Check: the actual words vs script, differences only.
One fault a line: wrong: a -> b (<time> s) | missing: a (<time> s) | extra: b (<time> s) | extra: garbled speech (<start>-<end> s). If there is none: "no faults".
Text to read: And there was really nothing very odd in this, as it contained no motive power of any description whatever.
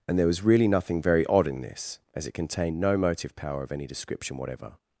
no faults